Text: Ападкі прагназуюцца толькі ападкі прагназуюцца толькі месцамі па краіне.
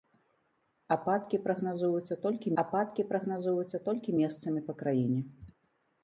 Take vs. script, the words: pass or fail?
pass